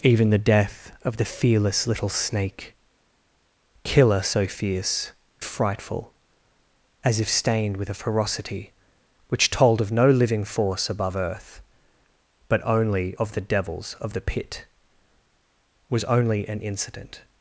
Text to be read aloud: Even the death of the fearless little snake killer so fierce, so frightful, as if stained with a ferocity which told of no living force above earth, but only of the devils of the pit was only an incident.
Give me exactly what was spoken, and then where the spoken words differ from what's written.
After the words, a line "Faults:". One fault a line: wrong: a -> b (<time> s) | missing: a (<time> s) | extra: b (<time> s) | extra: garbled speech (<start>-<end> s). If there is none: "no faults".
Even the death of the fearless little snake killer so fierce, frightful, as if stained with a ferocity which told of no living force above earth, but only of the devils of the pit was only an incident.
Faults:
missing: so (5.1 s)